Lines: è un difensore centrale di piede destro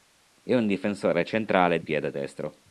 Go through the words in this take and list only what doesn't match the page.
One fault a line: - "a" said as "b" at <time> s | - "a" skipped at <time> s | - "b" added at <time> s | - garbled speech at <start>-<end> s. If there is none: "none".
- "di" skipped at 1.8 s